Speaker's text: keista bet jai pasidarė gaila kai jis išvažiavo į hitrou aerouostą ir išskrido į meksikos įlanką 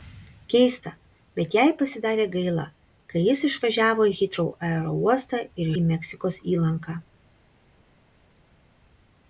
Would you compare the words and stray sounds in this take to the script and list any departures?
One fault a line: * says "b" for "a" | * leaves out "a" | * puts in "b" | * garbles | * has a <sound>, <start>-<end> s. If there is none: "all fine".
* leaves out "išskrido"